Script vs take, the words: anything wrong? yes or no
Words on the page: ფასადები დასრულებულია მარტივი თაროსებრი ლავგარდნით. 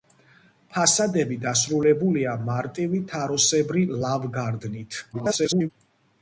yes